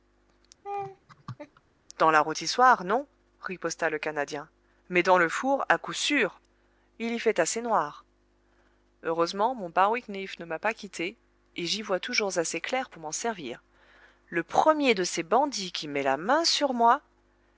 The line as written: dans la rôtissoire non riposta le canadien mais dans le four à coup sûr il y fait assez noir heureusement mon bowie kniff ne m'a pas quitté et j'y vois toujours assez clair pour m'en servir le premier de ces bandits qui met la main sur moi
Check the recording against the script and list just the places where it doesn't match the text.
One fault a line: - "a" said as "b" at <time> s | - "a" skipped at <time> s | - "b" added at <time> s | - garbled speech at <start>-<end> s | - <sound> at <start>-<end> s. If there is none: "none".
- laugh at 0.6-1.6 s